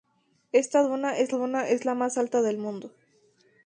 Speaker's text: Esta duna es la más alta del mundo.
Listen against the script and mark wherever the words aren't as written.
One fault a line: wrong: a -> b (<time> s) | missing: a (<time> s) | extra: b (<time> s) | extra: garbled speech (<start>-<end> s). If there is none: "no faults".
extra: duna es (1.3 s)